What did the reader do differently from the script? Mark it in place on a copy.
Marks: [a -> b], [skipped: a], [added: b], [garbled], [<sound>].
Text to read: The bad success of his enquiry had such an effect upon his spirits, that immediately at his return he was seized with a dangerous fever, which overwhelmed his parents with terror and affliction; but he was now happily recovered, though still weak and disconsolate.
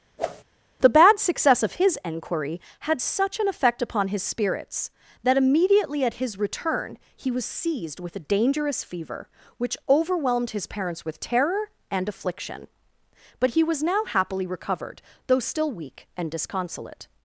[whoosh] The bad success of his enquiry had such an effect upon his spirits, that immediately at his return he was seized with a dangerous fever, which overwhelmed his parents with terror and affliction; but he was now happily recovered, though still weak and disconsolate.